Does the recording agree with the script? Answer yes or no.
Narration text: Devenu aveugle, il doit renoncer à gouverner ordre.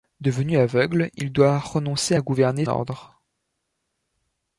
yes